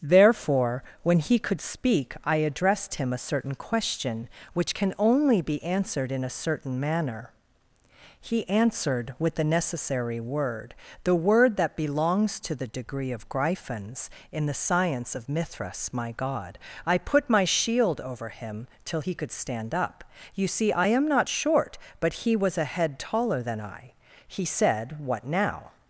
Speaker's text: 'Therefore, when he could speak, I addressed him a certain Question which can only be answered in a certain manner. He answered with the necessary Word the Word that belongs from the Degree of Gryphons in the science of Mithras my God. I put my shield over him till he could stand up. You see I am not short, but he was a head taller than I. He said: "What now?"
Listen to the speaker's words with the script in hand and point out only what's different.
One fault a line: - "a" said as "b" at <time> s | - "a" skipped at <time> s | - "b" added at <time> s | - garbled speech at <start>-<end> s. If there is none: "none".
- "from" said as "to" at 12.4 s